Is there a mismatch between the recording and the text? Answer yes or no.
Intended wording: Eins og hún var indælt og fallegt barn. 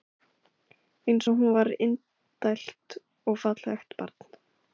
no